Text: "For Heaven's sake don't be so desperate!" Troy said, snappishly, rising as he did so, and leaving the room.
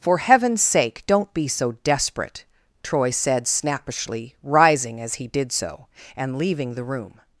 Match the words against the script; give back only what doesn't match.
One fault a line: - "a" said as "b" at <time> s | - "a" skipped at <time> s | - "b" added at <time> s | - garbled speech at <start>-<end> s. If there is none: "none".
none